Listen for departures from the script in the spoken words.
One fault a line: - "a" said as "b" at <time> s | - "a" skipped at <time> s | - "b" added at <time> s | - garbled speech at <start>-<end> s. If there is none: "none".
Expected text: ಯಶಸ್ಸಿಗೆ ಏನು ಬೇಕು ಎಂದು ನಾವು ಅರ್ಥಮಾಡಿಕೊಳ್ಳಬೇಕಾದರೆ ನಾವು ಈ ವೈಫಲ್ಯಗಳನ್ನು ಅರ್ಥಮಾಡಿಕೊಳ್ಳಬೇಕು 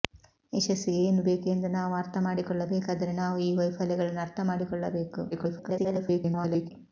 - garbled speech at 5.3-6.7 s